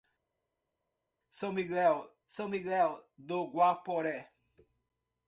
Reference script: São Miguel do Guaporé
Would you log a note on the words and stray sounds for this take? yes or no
yes